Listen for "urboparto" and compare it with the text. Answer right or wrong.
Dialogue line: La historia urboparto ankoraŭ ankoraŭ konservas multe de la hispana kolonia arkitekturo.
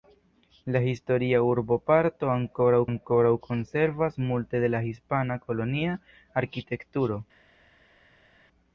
right